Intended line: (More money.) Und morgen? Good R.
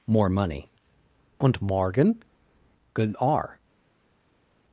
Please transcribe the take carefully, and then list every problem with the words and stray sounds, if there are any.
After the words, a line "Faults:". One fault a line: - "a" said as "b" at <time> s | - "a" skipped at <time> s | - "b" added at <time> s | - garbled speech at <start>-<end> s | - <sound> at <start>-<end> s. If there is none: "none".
(More money.) Und morgen? Good R.
Faults:
none